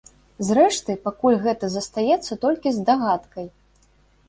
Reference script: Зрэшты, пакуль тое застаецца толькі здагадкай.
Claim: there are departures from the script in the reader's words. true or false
true